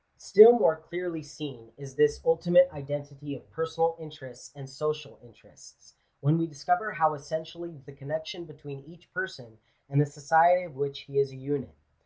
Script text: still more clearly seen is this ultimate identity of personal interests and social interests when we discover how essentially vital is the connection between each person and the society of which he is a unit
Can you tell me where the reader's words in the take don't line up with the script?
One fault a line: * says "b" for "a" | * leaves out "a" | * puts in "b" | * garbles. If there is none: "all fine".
* leaves out "vital is"